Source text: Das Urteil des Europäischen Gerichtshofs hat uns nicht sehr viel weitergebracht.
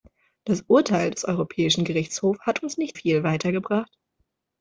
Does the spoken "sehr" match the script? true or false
false